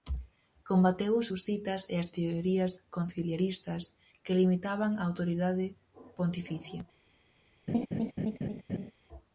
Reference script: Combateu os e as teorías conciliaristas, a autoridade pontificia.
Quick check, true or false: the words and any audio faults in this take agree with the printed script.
false